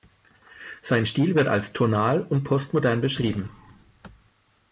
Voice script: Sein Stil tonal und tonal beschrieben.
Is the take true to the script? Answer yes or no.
no